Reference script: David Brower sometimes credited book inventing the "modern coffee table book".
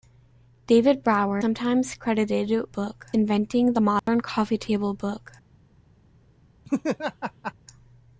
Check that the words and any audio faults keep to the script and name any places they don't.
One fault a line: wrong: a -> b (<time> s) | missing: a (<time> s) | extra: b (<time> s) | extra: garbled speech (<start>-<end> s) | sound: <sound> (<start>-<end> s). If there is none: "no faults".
sound: dropout (4.0-4.1 s)
sound: laugh (6.6-7.5 s)